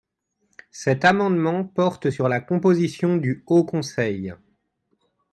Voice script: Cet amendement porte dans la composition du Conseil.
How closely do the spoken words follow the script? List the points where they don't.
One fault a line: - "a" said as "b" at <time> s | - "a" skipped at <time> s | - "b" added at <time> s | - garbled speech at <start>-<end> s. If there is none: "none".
- "dans" said as "sur" at 2.1 s
- "Haut" added at 3.5 s